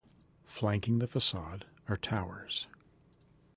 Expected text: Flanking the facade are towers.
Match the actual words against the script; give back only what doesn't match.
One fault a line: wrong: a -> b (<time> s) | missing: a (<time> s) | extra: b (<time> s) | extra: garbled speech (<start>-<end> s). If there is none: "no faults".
no faults